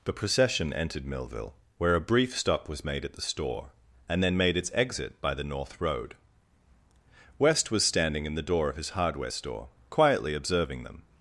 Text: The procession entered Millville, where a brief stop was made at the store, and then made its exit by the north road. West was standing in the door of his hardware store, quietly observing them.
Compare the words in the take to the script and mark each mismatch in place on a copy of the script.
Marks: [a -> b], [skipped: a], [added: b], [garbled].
The procession entered Millville, where a brief stop was made at the store, and then made its exit by the north road. West was standing in the door of his hardware store, quietly observing them.